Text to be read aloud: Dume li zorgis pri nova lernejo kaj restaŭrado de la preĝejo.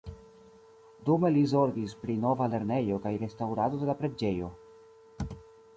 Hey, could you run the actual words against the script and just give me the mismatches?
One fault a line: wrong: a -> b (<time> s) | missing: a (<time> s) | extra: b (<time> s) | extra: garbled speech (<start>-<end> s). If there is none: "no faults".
no faults